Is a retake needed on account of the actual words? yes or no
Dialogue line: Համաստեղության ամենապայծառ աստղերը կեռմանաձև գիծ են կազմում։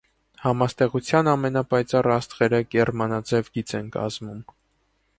no